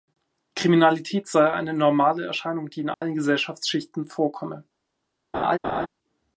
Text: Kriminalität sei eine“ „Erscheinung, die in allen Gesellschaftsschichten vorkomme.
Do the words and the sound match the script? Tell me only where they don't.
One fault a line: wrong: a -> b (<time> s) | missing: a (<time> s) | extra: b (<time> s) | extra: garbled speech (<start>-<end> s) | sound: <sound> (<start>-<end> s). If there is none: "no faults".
extra: normale (1.8 s)
sound: dropout (2.9-3.0 s)
sound: laugh (5.3-5.9 s)